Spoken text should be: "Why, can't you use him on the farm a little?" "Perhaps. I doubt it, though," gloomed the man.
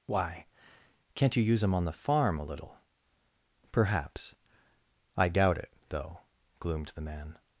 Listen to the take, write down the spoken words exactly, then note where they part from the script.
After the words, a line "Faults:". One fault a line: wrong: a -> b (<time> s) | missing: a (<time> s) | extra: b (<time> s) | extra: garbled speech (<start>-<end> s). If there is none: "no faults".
"Why, can't you use him on the farm a little?" "Perhaps. I doubt it, though," gloomed the man.
Faults:
no faults